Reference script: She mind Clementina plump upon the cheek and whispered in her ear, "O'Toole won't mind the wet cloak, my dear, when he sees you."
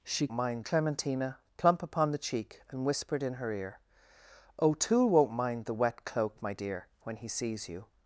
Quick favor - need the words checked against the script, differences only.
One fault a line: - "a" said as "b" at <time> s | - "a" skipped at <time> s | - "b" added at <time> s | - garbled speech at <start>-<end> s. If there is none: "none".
none